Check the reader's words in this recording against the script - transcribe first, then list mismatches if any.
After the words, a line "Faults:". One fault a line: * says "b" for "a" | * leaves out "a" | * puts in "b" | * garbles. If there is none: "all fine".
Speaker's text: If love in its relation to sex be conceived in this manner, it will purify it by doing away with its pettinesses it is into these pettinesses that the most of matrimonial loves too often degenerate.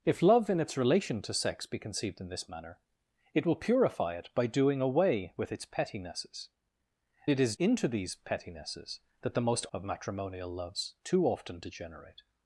If love in its relation to sex be conceived in this manner, it will purify it by doing away with its pettinesses it is into these pettinesses that the most of matrimonial loves too often degenerate.
Faults:
all fine